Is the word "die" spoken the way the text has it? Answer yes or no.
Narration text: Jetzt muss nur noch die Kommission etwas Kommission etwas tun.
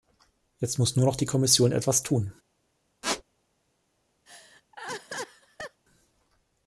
yes